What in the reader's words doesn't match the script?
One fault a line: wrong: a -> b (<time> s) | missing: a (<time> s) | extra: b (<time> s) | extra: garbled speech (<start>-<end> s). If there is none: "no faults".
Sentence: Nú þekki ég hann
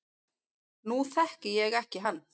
extra: ekki (1.8 s)